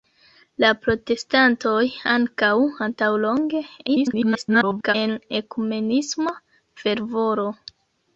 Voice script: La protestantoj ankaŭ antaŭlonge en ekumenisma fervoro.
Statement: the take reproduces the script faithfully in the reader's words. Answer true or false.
false